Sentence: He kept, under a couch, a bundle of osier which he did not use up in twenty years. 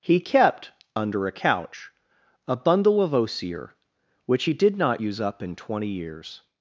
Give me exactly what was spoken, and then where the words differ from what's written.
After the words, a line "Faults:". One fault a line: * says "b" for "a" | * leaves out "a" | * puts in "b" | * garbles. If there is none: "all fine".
He kept, under a couch, a bundle of osier which he did not use up in twenty years.
Faults:
all fine